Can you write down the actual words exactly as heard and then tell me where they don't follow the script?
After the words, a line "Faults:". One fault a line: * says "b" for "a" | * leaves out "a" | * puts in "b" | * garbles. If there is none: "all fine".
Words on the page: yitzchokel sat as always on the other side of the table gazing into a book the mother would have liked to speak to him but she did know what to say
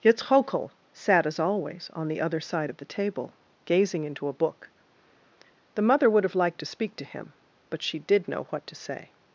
yitzchokel sat as always on the other side of the table gazing into a book the mother would have liked to speak to him but she did know what to say
Faults:
all fine